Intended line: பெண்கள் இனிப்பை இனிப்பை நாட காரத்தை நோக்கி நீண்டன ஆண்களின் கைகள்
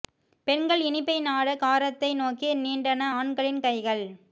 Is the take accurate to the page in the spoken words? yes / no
no